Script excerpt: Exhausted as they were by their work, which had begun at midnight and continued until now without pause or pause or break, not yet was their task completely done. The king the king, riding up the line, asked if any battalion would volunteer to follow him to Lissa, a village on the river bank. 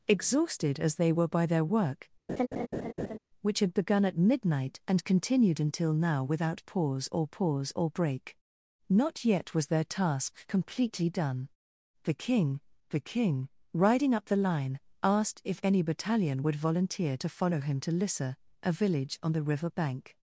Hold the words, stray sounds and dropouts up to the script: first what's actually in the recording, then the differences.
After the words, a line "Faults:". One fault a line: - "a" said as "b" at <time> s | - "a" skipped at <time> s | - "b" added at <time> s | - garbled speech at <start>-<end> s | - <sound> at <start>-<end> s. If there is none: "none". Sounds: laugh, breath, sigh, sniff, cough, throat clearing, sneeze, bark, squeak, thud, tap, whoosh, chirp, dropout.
Exhausted as they were by their work, which had begun at midnight and continued until now without pause or pause or break, not yet was their task completely done. The king the king, riding up the line, asked if any battalion would volunteer to follow him to Lissa, a village on the river bank.
Faults:
- laugh at 2.3-3.2 s